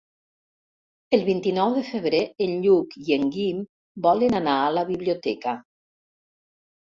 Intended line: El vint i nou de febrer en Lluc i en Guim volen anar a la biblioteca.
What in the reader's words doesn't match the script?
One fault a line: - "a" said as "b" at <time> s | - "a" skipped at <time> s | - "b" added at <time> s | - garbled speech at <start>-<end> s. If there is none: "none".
none